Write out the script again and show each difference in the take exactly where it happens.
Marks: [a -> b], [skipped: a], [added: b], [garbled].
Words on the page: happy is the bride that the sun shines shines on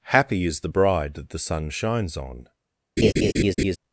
happy is the bride that the sun shines [skipped: shines] on